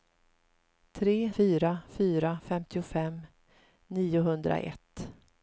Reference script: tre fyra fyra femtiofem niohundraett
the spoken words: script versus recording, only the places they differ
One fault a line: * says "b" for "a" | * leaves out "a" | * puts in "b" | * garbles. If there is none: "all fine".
all fine